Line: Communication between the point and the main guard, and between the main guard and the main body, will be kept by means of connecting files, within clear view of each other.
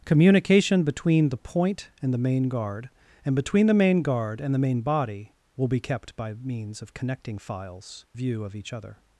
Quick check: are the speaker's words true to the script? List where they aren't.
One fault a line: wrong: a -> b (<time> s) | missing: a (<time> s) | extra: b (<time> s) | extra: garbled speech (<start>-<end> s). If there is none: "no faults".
missing: within clear (8.1 s)